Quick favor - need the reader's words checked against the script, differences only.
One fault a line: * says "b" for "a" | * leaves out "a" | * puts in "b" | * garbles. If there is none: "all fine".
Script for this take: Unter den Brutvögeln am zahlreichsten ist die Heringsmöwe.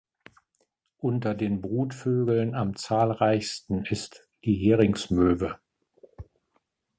all fine